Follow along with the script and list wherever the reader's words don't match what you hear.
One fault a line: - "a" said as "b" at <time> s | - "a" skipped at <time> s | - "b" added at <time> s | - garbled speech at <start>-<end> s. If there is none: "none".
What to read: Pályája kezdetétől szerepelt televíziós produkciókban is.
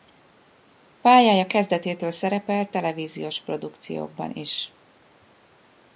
none